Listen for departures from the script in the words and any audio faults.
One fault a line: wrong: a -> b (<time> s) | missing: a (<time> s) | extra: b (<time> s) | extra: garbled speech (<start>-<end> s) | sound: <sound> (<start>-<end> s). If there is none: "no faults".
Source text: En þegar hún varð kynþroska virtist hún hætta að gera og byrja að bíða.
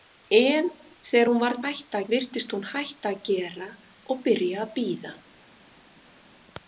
wrong: kynþroska -> hætta (1.6 s)